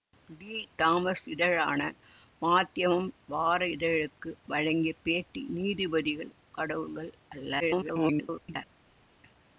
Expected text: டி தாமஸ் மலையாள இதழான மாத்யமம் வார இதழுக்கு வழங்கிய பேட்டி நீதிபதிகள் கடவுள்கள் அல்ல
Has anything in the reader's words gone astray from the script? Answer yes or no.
yes